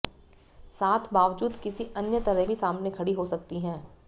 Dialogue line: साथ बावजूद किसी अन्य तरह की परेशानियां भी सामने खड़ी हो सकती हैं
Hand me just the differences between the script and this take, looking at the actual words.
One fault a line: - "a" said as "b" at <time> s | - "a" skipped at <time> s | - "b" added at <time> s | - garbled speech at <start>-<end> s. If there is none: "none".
- "की परेशानियां" skipped at 2.5 s